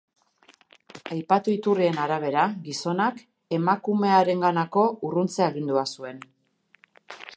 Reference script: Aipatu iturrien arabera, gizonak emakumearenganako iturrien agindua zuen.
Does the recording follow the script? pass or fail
fail